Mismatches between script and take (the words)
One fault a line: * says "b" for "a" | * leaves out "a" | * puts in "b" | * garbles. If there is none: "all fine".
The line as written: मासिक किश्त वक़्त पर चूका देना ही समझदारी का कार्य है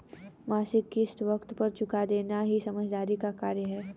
all fine